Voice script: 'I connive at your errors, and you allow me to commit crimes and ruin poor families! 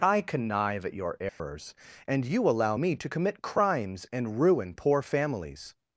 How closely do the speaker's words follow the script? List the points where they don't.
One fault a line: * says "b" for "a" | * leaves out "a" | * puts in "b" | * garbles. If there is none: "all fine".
all fine